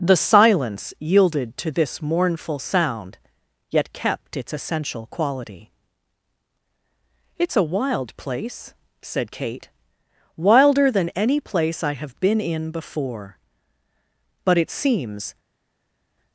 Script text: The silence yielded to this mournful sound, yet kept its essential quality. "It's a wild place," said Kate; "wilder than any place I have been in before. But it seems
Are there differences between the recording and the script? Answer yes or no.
no